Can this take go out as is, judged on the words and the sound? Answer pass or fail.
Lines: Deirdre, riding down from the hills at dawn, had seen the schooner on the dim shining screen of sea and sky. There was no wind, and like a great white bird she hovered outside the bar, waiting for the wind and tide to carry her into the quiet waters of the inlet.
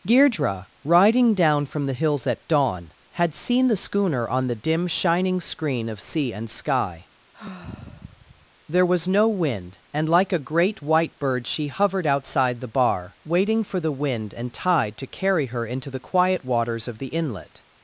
fail